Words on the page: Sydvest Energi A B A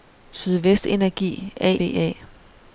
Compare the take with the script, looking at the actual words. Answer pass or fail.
pass